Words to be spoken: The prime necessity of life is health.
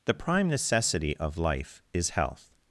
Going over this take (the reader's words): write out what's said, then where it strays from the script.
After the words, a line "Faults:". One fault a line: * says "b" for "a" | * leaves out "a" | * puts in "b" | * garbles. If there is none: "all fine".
The prime necessity of life is health.
Faults:
all fine